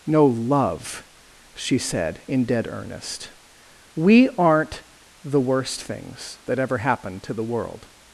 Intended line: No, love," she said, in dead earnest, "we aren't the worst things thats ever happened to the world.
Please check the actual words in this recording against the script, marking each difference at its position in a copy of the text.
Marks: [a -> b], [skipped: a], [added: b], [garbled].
No, love," she said, in dead earnest, "we aren't the worst things [thats -> that] ever happened to the world.